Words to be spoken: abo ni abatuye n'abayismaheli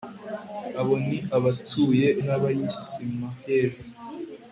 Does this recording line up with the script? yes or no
yes